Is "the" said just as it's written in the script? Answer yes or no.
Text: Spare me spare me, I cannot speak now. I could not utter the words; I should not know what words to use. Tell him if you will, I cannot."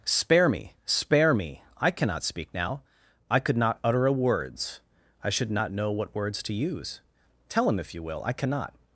no